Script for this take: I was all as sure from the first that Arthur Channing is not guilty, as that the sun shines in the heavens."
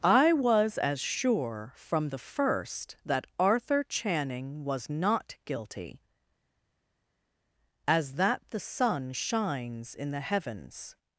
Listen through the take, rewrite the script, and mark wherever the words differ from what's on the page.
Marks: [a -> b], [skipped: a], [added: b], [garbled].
I was [skipped: all] as sure from the first that Arthur Channing [is -> was] not guilty, as that the sun shines in the heavens."